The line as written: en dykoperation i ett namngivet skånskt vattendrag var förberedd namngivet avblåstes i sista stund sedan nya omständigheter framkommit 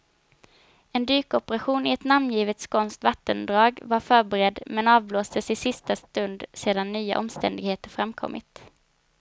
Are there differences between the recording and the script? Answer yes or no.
yes